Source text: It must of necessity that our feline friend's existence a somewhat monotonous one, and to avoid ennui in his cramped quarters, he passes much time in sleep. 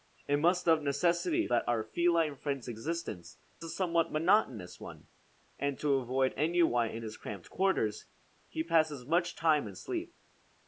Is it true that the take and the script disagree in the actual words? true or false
false